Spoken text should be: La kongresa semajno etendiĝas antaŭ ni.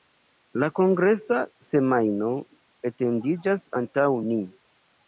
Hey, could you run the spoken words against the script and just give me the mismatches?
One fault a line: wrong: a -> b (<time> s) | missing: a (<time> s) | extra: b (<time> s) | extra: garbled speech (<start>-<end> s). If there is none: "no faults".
no faults